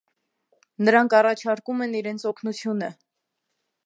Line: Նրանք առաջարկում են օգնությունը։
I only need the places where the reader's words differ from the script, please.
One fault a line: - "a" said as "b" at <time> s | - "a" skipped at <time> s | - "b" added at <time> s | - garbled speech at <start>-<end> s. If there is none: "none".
- "իրենց" added at 2.0 s